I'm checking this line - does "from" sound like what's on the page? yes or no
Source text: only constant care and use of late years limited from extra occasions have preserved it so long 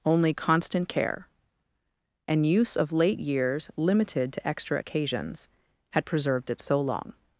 no